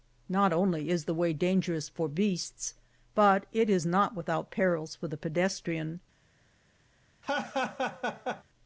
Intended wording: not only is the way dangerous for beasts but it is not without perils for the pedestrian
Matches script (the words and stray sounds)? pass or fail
fail